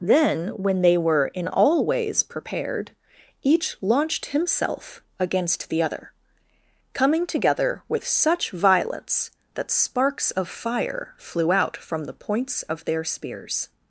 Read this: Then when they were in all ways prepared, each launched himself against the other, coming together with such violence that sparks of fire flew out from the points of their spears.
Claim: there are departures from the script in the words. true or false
false